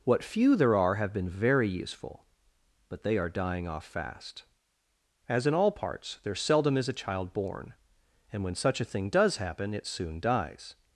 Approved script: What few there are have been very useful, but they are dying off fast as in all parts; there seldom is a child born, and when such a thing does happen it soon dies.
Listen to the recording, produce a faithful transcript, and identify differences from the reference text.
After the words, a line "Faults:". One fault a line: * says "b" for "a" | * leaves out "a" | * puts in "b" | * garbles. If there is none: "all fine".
What few there are have been very useful, but they are dying off fast as in all parts; there seldom is a child born, and when such a thing does happen it soon dies.
Faults:
all fine